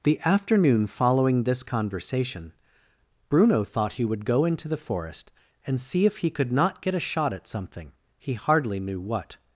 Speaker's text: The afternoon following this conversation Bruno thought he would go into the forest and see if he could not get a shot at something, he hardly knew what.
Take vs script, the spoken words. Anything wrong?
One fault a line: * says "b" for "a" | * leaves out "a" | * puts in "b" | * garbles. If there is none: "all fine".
all fine